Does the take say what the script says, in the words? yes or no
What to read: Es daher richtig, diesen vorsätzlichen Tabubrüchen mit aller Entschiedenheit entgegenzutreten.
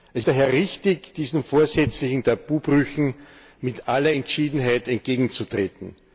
yes